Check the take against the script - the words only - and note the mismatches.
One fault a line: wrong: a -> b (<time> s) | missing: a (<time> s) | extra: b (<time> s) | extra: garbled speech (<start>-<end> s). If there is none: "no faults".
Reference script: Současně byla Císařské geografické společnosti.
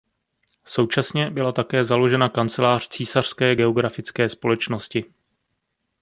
extra: také založena kancelář (1.5 s)